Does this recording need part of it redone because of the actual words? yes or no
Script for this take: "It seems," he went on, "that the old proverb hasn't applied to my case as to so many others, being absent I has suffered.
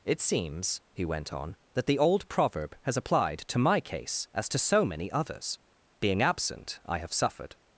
yes